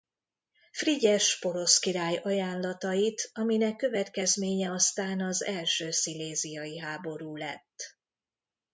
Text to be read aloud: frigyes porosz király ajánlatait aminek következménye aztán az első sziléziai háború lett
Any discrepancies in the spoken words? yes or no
no